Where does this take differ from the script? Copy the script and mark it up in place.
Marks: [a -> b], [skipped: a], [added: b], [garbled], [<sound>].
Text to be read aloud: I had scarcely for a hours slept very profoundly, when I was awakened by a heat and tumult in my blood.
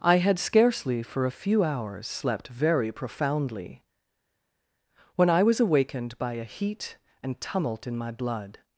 I had scarcely for a [added: few] hours slept very profoundly, when I was awakened by a heat and tumult in my blood.